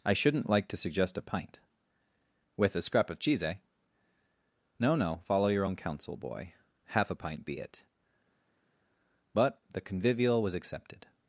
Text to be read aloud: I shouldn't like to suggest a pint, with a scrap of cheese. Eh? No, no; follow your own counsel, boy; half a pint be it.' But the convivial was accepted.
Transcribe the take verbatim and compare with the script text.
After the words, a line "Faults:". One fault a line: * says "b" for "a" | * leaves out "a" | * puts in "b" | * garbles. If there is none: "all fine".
I shouldn't like to suggest a pint, with a scrap of cheese. Eh? No, no; follow your own counsel, boy; half a pint be it.' But the convivial was accepted.
Faults:
all fine